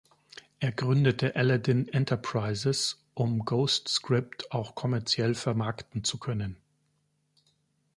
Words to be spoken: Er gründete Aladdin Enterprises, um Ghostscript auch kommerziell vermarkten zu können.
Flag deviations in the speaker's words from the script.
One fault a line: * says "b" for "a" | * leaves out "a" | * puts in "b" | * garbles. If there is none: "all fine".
all fine